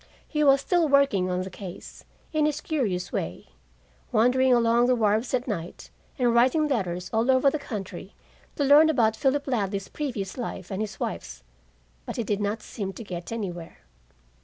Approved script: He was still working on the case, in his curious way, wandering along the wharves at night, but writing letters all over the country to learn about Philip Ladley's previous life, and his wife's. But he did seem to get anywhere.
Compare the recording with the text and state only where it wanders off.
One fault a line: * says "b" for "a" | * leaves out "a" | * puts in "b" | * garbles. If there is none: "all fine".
* says "and" for "but"
* puts in "not"